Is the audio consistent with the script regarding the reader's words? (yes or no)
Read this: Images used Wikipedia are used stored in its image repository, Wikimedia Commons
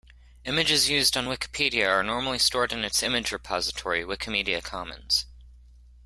no